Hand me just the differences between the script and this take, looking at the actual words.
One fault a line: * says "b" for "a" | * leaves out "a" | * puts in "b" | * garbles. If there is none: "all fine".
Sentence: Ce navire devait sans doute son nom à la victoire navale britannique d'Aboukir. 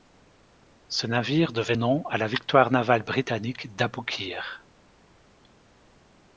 * leaves out "sans doute son"